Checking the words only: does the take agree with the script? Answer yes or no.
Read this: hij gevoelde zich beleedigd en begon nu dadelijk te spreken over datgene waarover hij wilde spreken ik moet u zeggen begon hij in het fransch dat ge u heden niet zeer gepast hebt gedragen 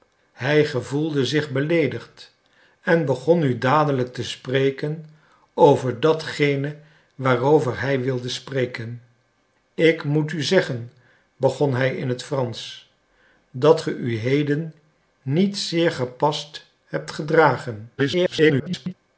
no